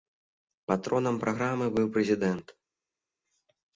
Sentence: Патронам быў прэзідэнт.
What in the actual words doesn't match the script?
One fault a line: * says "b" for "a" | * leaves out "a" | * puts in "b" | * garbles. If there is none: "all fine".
* puts in "праграмы"